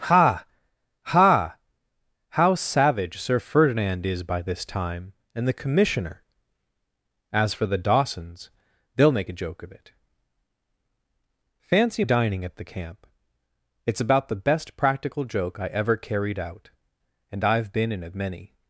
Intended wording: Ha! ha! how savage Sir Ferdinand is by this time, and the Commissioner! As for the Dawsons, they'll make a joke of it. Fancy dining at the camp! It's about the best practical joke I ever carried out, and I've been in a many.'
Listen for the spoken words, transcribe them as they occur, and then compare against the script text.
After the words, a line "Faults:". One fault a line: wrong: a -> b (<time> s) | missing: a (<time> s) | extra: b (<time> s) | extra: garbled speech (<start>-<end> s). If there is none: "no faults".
Ha! ha! how savage Sir Ferdinand is by this time, and the Commissioner! As for the Dawsons, they'll make a joke of it. Fancy dining at the camp! It's about the best practical joke I ever carried out, and I've been in a many.'
Faults:
no faults